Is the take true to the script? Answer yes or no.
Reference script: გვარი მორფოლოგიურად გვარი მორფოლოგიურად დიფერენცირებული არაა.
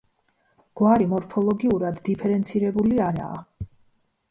no